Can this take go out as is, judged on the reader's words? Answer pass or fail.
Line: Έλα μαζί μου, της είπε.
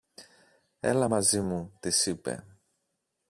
pass